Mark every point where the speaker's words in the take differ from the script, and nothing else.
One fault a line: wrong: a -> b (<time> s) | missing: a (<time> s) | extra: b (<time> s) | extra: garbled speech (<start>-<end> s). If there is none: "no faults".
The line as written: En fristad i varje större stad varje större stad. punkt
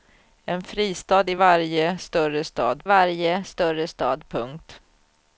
no faults